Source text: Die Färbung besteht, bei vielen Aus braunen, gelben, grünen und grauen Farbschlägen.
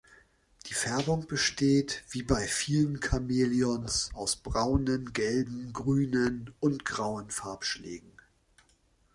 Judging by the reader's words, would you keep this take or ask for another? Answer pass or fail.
fail